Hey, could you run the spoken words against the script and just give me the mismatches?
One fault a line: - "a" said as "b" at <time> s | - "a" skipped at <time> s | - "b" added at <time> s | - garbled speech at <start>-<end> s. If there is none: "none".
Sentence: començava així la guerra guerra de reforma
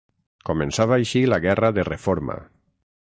- "guerra" skipped at 1.7 s